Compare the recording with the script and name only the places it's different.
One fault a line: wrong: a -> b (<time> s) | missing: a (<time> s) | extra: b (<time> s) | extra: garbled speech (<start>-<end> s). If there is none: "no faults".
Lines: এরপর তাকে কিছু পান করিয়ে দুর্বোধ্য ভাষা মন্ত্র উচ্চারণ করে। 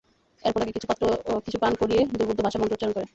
no faults